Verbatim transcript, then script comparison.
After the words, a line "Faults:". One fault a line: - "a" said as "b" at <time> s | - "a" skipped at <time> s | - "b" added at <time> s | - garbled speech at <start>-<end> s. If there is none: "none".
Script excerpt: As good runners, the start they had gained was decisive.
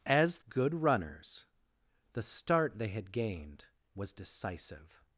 As good runners, the start they had gained was decisive.
Faults:
none